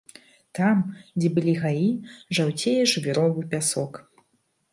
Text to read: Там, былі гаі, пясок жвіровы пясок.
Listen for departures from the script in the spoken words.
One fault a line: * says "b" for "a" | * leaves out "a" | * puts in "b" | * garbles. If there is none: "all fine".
* puts in "дзе"
* says "жаўцее" for "пясок"